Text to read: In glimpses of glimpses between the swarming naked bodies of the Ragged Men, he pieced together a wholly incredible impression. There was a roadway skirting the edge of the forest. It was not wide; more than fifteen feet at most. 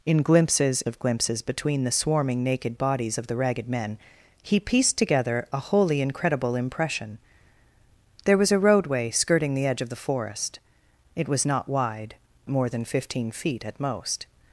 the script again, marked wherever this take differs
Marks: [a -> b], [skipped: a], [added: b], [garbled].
In glimpses of glimpses between the swarming naked bodies of the Ragged Men, he pieced together a wholly incredible impression. There was a roadway skirting the edge of the forest. It was not wide; more than fifteen feet at most.